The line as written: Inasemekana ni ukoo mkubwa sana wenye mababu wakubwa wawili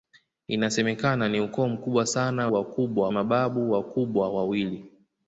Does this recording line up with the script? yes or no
no